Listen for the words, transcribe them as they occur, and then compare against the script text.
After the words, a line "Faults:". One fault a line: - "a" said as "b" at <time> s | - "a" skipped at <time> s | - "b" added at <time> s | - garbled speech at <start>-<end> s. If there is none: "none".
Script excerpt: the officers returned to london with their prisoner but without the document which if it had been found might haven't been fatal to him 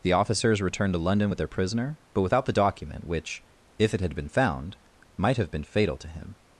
the officers returned to london with their prisoner but without the document which if it had been found might have been fatal to him
Faults:
- "haven't" said as "have" at 5.4 s